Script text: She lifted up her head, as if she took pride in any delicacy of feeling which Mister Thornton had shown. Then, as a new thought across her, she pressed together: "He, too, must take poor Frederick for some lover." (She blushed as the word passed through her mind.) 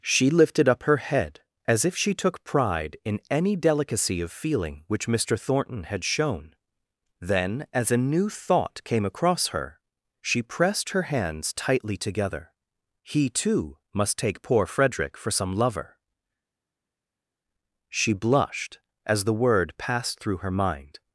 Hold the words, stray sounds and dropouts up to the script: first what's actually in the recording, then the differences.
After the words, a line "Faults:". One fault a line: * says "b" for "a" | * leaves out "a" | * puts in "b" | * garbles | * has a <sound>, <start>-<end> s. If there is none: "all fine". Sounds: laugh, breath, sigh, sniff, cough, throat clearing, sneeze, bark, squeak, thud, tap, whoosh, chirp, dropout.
She lifted up her head, as if she took pride in any delicacy of feeling which Mister Thornton had shown. Then, as a new thought came across her, she pressed her hands tightly together: "He, too, must take poor Frederick for some lover." (She blushed as the word passed through her mind.)
Faults:
* puts in "came"
* puts in "her hands tightly"